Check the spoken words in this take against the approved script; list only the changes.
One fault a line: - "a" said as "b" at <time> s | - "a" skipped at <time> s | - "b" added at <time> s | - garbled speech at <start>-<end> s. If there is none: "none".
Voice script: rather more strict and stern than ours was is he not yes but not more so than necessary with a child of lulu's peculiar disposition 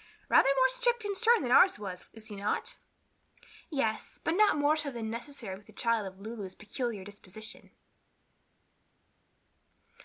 none